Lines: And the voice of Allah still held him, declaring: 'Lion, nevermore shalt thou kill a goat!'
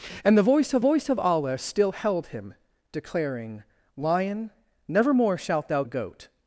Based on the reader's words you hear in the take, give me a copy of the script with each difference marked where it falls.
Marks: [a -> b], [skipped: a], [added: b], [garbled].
And the voice of [added: voice of] Allah still held him, declaring: 'Lion, nevermore shalt thou [skipped: kill] a goat!'